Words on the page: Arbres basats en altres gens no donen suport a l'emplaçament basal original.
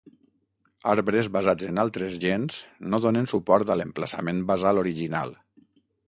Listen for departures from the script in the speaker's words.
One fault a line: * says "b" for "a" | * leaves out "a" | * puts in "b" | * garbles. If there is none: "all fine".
all fine